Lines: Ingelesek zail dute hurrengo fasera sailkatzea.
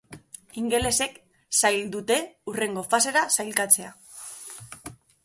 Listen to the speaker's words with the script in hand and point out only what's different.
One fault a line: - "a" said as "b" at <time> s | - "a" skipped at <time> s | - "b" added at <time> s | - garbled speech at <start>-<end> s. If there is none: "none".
none